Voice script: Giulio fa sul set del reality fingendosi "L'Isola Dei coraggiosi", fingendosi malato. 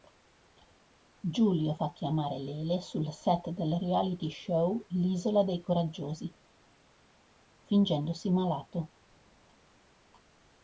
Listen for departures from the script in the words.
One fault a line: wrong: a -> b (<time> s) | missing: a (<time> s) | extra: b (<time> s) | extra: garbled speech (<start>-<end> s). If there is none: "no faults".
extra: chiamare Lele (1.9 s)
wrong: fingendosi -> show (4.3 s)